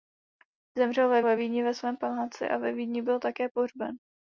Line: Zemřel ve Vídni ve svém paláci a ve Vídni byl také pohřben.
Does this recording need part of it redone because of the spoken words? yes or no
yes